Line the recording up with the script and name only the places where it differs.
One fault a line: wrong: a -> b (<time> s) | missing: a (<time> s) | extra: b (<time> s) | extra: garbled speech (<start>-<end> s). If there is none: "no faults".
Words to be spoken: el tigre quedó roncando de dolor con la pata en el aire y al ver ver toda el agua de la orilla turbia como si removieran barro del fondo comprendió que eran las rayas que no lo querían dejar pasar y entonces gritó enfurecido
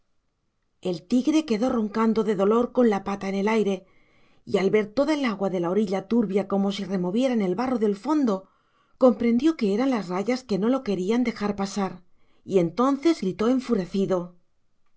missing: ver (4.9 s)
extra: el (7.4 s)